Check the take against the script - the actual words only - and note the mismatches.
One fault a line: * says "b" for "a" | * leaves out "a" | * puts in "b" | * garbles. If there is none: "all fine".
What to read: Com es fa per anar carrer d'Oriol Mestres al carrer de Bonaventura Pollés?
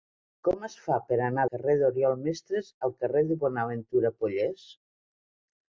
all fine